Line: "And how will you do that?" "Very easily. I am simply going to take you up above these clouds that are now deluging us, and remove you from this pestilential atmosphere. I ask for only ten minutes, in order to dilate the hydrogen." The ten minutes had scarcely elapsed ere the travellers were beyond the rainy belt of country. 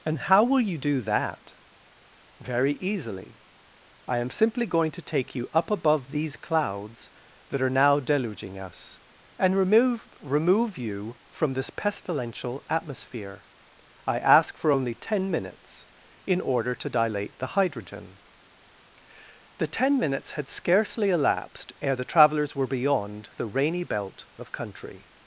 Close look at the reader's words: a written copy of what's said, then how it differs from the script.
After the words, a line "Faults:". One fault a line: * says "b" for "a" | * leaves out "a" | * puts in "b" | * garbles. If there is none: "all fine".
"And how will you do that?" "Very easily. I am simply going to take you up above these clouds that are now deluging us, and remove remove you from this pestilential atmosphere. I ask for only ten minutes, in order to dilate the hydrogen." The ten minutes had scarcely elapsed ere the travellers were beyond the rainy belt of country.
Faults:
* puts in "remove"